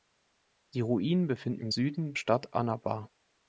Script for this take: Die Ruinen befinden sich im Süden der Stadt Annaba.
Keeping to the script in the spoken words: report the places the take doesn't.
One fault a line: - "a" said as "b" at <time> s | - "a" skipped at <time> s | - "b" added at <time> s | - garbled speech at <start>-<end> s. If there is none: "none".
- "sich" skipped at 1.6 s
- "der" skipped at 2.1 s